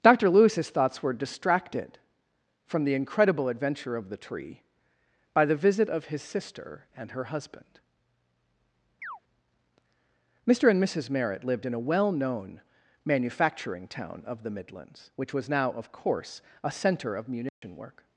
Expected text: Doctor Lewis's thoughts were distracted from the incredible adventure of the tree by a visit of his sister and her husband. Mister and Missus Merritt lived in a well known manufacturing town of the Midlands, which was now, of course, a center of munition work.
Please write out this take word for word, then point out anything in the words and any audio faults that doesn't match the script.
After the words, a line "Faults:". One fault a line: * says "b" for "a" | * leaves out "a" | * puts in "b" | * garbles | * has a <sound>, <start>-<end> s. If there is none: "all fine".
Doctor Lewis's thoughts were distracted from the incredible adventure of the tree by the visit of his sister and her husband. Mister and Missus Merritt lived in a well known manufacturing town of the Midlands, which was now, of course, a center of munition work.
Faults:
* says "the" for "a"
* has a chirp, 9.0-9.2 s
* has a dropout, 17.5-17.6 s